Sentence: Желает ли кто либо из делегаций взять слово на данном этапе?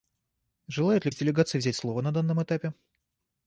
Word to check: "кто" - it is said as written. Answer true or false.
false